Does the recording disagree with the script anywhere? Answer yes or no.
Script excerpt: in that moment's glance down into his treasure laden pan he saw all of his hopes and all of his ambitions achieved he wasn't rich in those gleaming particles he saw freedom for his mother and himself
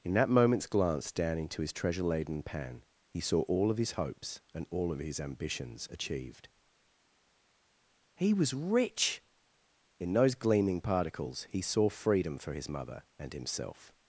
yes